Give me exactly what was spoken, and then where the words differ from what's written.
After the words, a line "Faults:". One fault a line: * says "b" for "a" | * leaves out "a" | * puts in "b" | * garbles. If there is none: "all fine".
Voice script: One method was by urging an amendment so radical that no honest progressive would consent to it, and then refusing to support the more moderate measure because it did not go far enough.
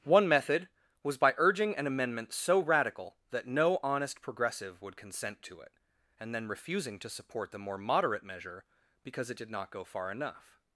One method was by urging an amendment so radical that no honest progressive would consent to it, and then refusing to support the more moderate measure because it did not go far enough.
Faults:
all fine